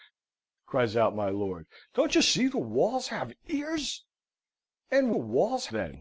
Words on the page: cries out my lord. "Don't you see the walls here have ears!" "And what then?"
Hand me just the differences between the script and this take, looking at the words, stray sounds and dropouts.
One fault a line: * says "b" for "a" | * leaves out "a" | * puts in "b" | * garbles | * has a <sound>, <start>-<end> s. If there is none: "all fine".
* leaves out "here"
* says "walls" for "what"